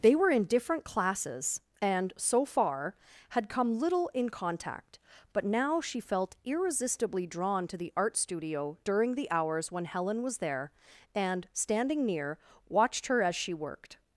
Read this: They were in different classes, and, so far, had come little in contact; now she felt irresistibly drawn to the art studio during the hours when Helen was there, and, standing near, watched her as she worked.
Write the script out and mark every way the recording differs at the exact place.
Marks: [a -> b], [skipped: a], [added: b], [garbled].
They were in different classes, and, so far, had come little in contact; [added: but] now she felt irresistibly drawn to the art studio during the hours when Helen was there, and, standing near, watched her as she worked.